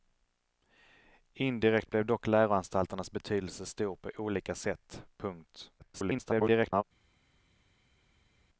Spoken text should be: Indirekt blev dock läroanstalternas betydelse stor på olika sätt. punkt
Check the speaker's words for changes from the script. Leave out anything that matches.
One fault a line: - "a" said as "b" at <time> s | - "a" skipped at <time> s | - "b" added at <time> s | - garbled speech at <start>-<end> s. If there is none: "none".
- garbled speech at 5.8-6.8 s